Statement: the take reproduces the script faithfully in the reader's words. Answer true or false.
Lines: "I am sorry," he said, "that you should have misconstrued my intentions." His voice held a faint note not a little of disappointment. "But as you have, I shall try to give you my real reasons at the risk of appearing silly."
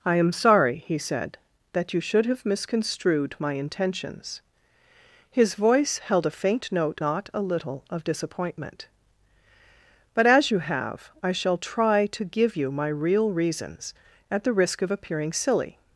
true